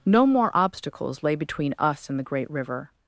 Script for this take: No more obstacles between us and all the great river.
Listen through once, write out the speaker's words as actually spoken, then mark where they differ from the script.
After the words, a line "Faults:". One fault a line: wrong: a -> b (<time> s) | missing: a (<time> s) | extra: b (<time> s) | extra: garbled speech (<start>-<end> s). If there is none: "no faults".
No more obstacles lay between us and the great river.
Faults:
extra: lay (1.2 s)
missing: all (2.2 s)